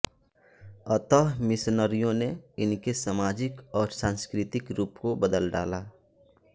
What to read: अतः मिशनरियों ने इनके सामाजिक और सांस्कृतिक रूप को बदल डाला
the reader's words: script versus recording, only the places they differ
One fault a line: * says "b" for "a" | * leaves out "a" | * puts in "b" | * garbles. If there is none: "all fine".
all fine